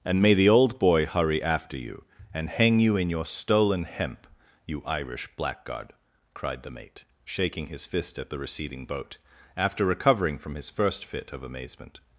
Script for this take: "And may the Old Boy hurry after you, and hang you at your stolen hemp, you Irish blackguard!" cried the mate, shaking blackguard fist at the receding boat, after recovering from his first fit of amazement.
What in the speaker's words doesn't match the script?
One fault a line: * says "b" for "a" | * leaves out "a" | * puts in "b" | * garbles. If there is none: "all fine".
* says "in" for "at"
* says "his" for "blackguard"